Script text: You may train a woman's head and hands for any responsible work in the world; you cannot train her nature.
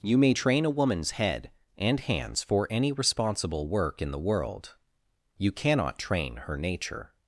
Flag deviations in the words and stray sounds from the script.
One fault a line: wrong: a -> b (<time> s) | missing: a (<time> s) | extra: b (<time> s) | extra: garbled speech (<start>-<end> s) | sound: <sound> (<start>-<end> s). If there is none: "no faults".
no faults